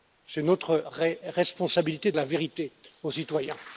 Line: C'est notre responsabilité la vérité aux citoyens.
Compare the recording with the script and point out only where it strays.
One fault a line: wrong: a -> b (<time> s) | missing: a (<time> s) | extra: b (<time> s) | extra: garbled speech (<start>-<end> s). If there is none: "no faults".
no faults